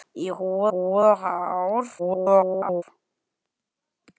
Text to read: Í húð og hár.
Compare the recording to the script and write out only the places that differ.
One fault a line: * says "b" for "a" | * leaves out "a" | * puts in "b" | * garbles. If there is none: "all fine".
* puts in "húð"
* garbles